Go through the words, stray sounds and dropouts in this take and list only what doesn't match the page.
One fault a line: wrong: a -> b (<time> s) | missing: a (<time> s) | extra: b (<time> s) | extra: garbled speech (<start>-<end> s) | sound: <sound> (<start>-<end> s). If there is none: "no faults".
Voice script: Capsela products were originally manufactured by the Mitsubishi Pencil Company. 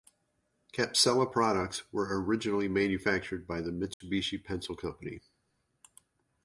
sound: dropout (3.9-4.0 s)